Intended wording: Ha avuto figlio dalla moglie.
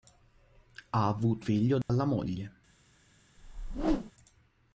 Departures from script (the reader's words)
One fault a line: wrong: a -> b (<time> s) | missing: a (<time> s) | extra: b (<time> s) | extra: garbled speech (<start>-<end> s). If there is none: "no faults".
no faults